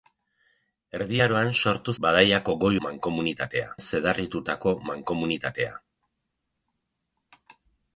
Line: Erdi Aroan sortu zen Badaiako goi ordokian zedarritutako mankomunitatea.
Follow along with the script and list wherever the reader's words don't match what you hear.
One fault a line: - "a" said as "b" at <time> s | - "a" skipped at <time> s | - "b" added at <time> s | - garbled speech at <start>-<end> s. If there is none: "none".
- "zen" skipped at 1.9 s
- "ordokian" said as "mankomunitatea" at 2.9 s